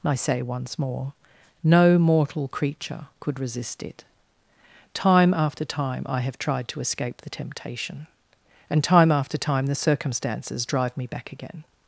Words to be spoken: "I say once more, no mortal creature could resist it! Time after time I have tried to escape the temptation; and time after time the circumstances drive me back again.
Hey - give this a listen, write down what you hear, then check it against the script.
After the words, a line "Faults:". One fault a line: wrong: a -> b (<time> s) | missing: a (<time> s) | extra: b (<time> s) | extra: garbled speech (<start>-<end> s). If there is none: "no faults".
"I say once more, no mortal creature could resist it! Time after time I have tried to escape the temptation; and time after time the circumstances drive me back again.
Faults:
no faults